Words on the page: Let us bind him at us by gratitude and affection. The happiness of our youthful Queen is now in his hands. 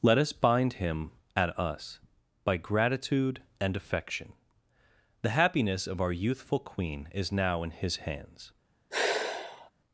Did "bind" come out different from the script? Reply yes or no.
no